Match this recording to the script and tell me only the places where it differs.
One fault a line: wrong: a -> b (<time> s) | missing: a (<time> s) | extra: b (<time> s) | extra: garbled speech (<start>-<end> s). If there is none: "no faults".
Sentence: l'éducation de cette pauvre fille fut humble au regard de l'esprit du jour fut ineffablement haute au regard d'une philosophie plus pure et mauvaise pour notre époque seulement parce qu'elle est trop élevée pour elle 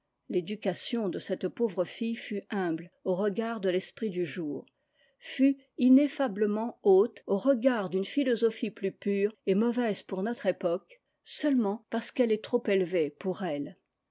no faults